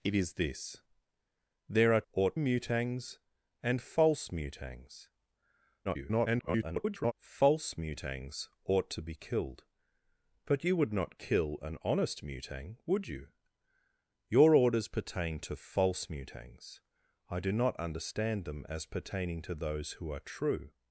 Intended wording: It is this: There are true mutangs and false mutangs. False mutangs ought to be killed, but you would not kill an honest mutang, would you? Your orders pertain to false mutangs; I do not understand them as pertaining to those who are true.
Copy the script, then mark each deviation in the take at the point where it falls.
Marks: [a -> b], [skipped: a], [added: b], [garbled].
It is this: There are [true -> ought] mutangs and false mutangs. [garbled] False mutangs ought to be killed, but you would not kill an honest mutang, would you? Your orders pertain to false mutangs; I do not understand them as pertaining to those who are true.